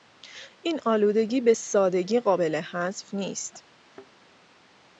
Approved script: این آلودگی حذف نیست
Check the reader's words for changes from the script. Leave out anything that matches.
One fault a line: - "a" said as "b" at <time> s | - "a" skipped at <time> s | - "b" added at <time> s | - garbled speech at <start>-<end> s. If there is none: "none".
- "به سادگی قابل" added at 1.4 s